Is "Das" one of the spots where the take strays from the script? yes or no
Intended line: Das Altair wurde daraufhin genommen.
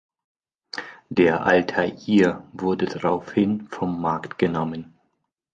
yes